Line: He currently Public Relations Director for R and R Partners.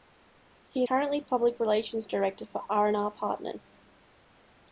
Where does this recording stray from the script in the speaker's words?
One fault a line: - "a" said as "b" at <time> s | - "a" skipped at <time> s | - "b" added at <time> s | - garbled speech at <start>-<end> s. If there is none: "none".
none